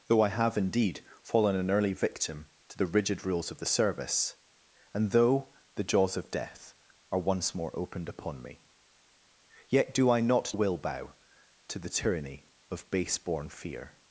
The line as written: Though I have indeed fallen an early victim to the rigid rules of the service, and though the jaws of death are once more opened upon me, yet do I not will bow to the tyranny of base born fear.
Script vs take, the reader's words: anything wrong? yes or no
no